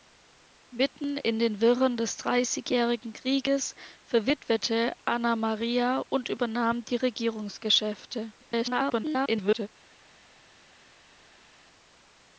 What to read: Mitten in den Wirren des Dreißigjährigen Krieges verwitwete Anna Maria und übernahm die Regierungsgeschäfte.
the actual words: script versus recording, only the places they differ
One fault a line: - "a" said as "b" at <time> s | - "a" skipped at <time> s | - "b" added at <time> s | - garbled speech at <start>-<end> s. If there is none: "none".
- garbled speech at 8.4-9.7 s